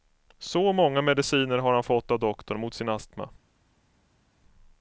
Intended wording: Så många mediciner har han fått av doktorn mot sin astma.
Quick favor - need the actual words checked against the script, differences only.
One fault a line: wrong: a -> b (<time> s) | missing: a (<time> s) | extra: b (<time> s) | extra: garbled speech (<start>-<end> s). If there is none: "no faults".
no faults